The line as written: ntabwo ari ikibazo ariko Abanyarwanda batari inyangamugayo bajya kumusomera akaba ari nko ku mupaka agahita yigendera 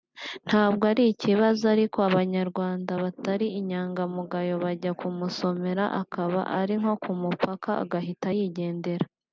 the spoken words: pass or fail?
pass